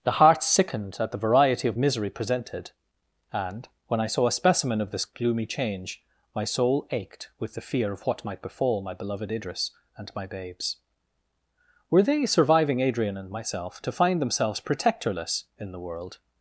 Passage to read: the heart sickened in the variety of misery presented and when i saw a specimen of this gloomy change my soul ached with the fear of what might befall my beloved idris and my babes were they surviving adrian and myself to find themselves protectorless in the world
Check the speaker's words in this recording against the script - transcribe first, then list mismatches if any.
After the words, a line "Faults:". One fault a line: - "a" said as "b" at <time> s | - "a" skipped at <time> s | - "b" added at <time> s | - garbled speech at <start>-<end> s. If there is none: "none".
the heart sickened at the variety of misery presented and when i saw a specimen of this gloomy change my soul ached with the fear of what might befall my beloved idris and my babes were they surviving adrian and myself to find themselves protectorless in the world
Faults:
- "in" said as "at" at 1.0 s